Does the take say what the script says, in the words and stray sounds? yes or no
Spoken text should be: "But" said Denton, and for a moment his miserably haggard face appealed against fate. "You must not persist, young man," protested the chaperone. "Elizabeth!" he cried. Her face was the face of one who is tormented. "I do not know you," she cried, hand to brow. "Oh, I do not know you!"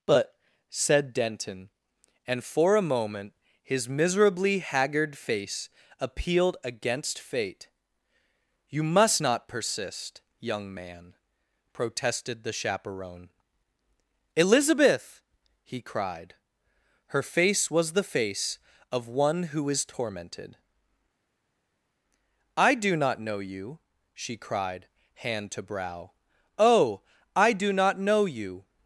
yes